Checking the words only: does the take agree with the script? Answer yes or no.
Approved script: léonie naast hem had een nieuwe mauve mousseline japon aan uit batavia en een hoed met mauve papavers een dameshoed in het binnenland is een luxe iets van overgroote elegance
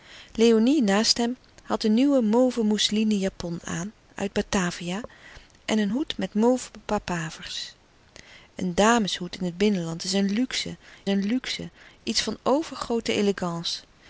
no